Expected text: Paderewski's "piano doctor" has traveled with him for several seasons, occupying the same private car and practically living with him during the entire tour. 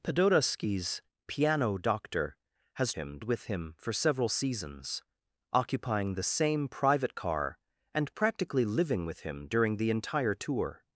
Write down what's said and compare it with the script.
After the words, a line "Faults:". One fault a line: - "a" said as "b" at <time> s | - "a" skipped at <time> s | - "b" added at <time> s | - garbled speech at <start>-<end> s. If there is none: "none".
Paderewski's "piano doctor" has him with him for several seasons, occupying the same private car and practically living with him during the entire tour.
Faults:
- "traveled" said as "him" at 2.9 s